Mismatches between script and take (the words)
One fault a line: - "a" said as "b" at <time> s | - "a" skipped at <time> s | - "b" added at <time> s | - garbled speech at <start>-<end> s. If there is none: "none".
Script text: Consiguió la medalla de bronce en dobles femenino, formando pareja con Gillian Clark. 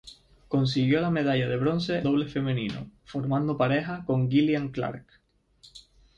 - "en" skipped at 2.0 s